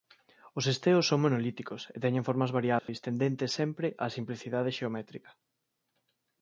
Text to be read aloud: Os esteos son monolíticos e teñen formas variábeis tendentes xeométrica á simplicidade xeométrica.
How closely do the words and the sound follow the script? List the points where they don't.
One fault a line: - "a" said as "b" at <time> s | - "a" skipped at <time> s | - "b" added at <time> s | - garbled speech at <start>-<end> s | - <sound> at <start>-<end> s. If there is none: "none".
- dropout at 2.8-2.9 s
- "xeométrica" said as "sempre" at 3.6 s